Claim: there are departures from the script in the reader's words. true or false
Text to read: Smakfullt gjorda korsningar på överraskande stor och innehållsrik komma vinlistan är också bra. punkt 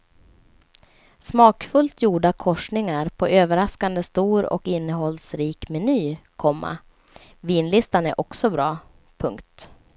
true